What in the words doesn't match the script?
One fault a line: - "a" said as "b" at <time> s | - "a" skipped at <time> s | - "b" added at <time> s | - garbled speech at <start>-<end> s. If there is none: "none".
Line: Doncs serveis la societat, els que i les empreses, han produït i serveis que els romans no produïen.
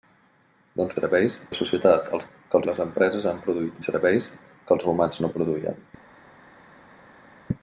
none